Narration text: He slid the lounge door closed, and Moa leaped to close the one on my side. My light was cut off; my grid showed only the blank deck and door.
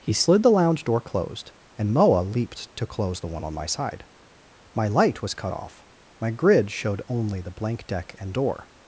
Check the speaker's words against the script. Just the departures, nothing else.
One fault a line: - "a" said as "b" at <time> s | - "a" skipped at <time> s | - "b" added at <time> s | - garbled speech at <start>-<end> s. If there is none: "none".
none